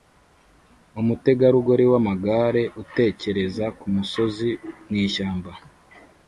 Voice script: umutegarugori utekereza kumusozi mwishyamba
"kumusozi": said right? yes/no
yes